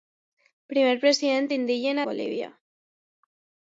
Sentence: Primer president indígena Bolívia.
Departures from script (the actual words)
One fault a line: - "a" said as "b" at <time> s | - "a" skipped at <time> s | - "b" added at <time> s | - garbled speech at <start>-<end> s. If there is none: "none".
none